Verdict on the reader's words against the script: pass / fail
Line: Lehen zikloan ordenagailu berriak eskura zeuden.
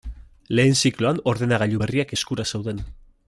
pass